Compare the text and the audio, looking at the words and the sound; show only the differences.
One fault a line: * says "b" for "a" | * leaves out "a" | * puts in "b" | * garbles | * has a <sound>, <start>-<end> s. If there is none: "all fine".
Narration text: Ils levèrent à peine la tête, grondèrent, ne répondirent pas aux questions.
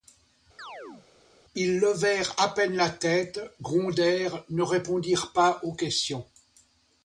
* has a chirp, 0.6-1.1 s